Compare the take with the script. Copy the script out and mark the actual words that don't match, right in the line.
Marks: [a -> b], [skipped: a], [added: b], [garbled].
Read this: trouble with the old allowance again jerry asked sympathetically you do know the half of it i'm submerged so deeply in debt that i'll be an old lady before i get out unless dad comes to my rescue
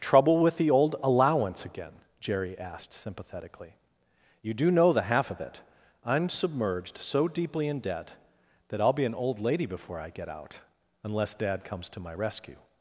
trouble with the old allowance again jerry asked sympathetically you do know the half of it i'm submerged so deeply in debt that i'll be an old lady before i get out unless dad comes to my rescue